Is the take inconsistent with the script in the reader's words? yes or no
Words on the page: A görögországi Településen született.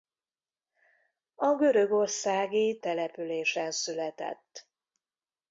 no